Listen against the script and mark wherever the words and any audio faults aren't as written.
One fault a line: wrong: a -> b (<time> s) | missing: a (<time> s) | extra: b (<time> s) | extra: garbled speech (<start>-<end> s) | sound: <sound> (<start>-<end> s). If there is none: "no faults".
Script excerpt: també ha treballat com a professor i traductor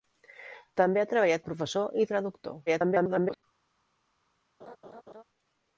missing: com (1.4 s)
extra: garbled speech (2.7-3.4 s)
sound: laugh (4.6-5.2 s)